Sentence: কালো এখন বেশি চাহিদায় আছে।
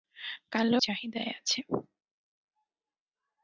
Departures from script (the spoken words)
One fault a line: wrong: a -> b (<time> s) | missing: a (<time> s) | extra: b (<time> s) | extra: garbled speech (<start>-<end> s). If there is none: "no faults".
missing: এখন বেশি (0.8 s)